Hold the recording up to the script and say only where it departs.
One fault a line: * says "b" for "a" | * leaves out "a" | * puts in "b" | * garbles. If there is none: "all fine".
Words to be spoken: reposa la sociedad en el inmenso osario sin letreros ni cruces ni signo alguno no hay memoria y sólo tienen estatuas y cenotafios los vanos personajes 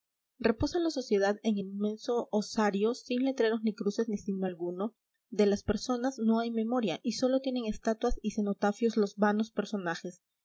* puts in "de las personas"